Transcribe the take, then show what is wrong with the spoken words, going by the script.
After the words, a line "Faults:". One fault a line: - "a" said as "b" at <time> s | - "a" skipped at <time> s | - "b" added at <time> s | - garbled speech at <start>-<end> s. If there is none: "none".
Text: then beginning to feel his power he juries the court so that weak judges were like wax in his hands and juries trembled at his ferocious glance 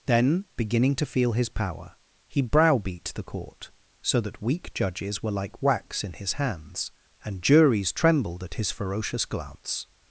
then beginning to feel his power he browbeat the court so that weak judges were like wax in his hands and juries trembled at his ferocious glance
Faults:
- "juries" said as "browbeat" at 2.4 s